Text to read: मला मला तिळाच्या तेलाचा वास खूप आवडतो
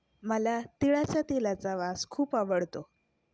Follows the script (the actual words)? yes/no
no